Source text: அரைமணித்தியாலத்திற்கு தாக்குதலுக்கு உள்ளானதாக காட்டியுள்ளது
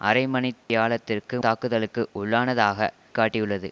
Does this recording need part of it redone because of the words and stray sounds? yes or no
yes